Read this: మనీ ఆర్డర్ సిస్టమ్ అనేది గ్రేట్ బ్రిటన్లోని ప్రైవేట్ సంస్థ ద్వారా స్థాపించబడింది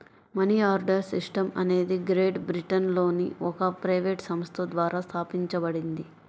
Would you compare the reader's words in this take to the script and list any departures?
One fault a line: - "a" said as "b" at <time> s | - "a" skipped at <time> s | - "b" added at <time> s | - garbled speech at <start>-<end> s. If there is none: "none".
- "ఒక" added at 3.4 s